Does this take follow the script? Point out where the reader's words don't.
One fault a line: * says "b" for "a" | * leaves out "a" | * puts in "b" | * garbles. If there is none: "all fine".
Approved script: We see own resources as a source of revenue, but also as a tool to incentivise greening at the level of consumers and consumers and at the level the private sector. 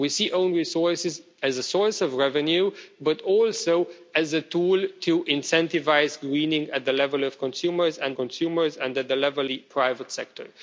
all fine